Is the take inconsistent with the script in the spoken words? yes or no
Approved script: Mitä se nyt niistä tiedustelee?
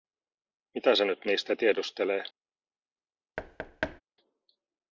no